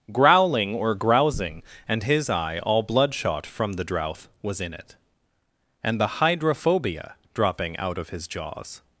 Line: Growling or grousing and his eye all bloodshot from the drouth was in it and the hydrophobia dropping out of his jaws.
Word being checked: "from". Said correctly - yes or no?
yes